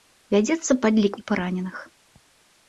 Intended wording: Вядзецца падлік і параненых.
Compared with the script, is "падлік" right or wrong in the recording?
right